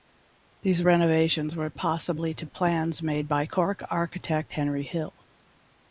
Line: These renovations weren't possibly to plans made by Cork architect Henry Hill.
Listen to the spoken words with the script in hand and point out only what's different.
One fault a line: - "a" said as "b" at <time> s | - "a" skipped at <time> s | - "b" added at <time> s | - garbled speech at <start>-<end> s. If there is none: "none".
- "weren't" said as "were" at 1.6 s